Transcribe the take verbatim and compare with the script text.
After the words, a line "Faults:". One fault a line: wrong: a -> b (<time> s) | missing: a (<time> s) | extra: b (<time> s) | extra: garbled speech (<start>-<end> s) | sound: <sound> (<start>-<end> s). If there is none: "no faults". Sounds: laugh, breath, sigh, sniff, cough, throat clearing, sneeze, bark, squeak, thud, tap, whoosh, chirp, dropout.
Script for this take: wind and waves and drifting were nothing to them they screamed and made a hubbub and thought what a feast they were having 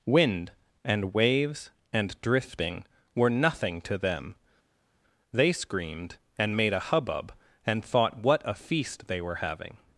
wind and waves and drifting were nothing to them they screamed and made a hubbub and thought what a feast they were having
Faults:
no faults